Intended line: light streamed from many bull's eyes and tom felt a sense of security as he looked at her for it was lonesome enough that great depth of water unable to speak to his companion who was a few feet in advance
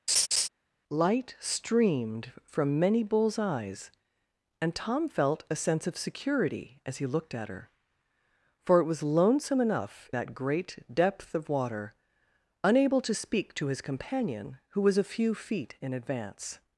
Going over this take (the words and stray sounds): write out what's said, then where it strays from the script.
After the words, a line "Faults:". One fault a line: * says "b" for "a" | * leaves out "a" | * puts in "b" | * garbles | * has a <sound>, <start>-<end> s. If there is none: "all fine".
light streamed from many bull's eyes and tom felt a sense of security as he looked at her for it was lonesome enough that great depth of water unable to speak to his companion who was a few feet in advance
Faults:
* has a laugh, 0.1-0.5 s